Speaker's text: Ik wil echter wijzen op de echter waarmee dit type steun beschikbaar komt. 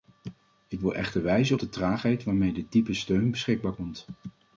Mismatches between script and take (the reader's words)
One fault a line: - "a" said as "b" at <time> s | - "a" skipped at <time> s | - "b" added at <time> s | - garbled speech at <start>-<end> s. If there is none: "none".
- "echter" said as "traagheid" at 1.7 s